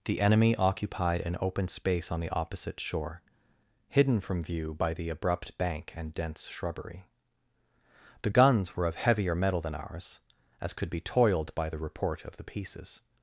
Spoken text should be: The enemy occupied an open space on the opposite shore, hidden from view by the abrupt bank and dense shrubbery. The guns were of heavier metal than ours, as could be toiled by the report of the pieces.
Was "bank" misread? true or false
false